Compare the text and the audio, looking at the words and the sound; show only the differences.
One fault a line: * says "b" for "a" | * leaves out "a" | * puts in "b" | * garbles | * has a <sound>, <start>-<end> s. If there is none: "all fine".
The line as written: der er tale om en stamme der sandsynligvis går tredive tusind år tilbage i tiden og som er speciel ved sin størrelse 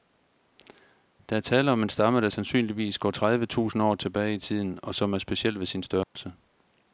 * has a dropout, 6.0-6.2 s